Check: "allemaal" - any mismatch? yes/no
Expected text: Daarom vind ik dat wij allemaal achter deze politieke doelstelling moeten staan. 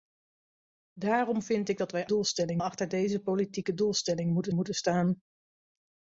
yes